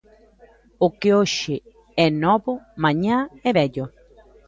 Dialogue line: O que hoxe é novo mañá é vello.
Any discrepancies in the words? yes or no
no